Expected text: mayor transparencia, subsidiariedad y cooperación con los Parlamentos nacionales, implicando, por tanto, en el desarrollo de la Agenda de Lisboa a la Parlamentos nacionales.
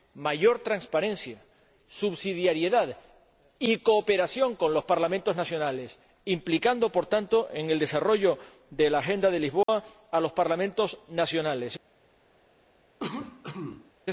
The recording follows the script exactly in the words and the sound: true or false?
false